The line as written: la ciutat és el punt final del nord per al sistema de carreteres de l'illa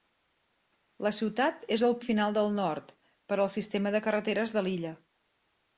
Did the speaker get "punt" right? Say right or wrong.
wrong